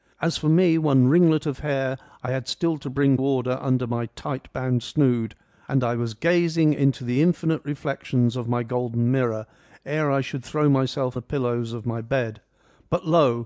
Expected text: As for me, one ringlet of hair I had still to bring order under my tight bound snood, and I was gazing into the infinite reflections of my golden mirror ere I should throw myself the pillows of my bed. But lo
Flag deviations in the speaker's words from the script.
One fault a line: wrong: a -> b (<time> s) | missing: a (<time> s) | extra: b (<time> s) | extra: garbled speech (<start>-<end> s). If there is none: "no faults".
no faults